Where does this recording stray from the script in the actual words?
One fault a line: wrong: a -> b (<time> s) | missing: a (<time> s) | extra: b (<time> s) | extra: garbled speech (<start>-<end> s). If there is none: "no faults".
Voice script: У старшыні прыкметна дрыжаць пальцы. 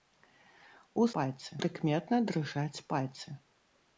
wrong: старшыні -> пальцы (1.2 s)